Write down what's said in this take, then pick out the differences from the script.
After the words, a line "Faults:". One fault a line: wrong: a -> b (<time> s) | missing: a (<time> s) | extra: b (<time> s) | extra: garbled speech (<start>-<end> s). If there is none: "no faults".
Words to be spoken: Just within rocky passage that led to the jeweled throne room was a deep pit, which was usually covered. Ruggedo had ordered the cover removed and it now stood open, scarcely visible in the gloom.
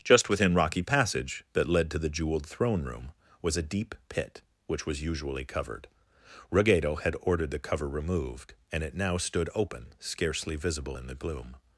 Just within rocky passage that led to the jeweled throne room was a deep pit, which was usually covered. Ruggedo had ordered the cover removed and it now stood open, scarcely visible in the gloom.
Faults:
no faults